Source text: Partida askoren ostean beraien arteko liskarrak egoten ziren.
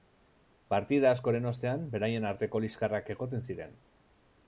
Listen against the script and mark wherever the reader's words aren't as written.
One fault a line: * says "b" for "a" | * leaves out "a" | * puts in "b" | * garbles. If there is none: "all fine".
all fine